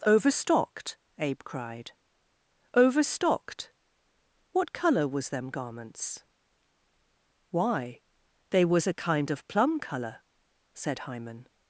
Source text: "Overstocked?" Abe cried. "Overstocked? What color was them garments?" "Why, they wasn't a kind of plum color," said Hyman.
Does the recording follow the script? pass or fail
fail